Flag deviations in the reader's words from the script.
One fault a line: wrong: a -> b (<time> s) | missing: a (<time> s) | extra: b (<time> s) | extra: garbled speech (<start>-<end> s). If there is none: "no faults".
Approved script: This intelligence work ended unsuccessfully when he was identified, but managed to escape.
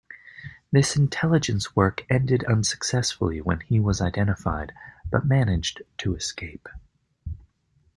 no faults